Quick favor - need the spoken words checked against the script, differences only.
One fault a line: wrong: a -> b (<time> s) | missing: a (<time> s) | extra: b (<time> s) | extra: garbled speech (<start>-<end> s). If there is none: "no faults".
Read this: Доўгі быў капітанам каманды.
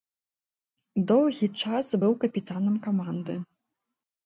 extra: час (1.6 s)